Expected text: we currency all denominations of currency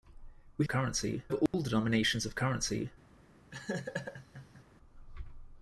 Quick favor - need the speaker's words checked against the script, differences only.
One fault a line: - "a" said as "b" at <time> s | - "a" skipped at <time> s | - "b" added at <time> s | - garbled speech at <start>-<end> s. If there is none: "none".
none